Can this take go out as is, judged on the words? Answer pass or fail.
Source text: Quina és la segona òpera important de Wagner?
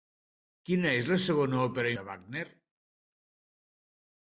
fail